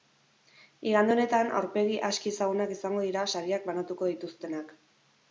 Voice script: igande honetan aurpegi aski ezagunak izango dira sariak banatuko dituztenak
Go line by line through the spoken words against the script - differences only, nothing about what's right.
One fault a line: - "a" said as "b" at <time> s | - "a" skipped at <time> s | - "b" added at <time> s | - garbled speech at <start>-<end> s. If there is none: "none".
none